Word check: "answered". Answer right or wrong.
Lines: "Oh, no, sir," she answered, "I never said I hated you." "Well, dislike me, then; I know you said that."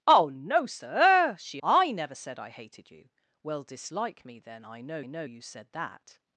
wrong